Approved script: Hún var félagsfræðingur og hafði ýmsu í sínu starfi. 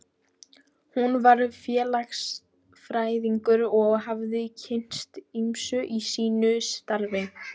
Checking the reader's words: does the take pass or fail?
fail